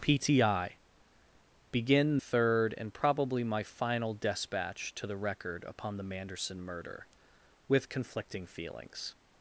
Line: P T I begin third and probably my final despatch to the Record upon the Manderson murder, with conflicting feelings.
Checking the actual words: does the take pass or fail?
pass